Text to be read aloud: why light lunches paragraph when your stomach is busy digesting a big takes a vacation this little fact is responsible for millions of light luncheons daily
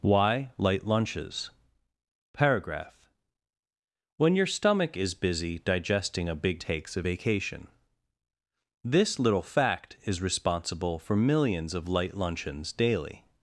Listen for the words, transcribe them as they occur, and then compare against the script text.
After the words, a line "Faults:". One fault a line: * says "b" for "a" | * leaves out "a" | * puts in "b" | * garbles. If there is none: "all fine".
why light lunches paragraph when your stomach is busy digesting a big takes a vacation this little fact is responsible for millions of light luncheons daily
Faults:
all fine